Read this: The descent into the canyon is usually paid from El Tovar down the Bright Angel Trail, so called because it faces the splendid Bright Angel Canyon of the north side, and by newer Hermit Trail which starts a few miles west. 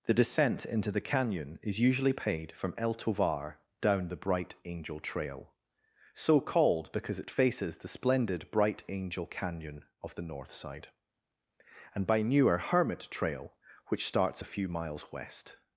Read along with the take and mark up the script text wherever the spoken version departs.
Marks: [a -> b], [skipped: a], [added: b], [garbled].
The descent into the canyon is usually paid from El Tovar down the Bright Angel Trail, so called because it faces the splendid Bright Angel Canyon of the north side, and by newer Hermit Trail which starts a few miles west.